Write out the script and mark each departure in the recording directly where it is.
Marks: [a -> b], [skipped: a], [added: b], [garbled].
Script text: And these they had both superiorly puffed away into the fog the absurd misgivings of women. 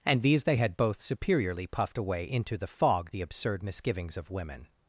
And these they had both superiorly puffed away into the fog the absurd misgivings of women.